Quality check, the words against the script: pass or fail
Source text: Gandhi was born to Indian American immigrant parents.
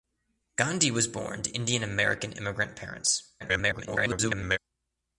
fail